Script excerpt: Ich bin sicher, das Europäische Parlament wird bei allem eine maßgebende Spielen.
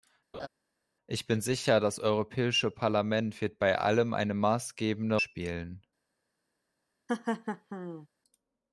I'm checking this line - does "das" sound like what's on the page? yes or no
yes